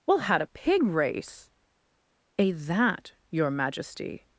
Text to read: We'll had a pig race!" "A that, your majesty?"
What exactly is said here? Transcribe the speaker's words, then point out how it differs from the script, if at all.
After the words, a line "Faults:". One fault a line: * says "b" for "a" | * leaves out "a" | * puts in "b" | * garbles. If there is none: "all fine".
We'll had a pig race!" "A that, your majesty?"
Faults:
all fine